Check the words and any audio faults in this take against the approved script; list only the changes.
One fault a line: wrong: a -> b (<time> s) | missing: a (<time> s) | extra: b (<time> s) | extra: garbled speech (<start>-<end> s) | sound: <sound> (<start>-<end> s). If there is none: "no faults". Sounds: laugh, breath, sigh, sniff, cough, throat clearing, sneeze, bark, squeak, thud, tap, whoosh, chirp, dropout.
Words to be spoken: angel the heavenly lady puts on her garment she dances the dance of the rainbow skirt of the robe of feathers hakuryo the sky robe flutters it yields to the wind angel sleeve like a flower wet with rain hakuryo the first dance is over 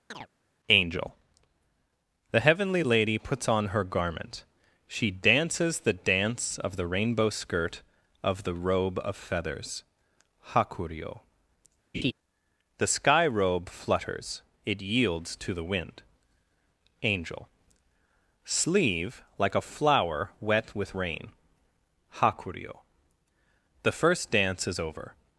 sound: chirp (0.1-0.3 s)
sound: laugh (11.9-12.1 s)